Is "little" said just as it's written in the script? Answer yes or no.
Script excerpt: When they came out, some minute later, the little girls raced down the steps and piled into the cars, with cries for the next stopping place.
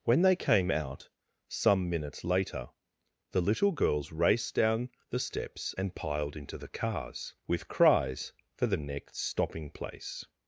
yes